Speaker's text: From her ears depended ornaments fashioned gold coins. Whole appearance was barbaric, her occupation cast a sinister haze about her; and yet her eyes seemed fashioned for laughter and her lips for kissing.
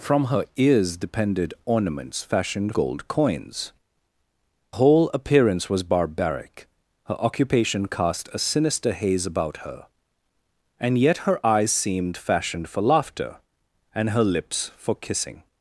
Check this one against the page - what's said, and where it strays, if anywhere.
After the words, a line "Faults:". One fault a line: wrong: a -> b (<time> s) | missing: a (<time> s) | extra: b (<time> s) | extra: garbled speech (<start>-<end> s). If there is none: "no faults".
From her ears depended ornaments fashioned gold coins. Whole appearance was barbaric, her occupation cast a sinister haze about her; and yet her eyes seemed fashioned for laughter and her lips for kissing.
Faults:
no faults